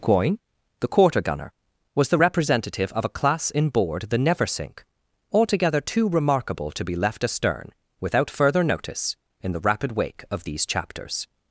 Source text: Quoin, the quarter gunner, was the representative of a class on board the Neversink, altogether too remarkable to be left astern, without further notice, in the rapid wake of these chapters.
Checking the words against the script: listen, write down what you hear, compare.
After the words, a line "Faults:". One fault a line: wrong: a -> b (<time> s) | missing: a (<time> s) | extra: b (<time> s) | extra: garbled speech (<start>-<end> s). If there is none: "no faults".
Quoin, the quarter gunner, was the representative of a class in board the Neversink, altogether too remarkable to be left astern, without further notice, in the rapid wake of these chapters.
Faults:
wrong: on -> in (3.5 s)